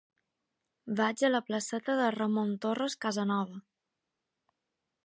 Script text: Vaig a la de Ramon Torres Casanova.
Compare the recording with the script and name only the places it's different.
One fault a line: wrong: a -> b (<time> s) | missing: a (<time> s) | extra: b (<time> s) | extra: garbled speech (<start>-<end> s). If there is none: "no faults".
extra: placeta (1.5 s)